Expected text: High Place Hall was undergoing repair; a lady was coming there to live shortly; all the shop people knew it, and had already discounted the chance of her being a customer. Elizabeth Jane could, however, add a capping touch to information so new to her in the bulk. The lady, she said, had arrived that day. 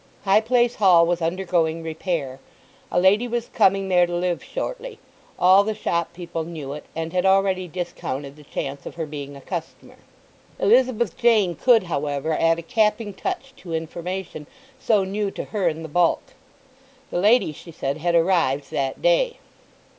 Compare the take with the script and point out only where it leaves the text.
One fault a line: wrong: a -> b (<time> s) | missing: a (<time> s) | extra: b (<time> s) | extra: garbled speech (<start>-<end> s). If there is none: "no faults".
no faults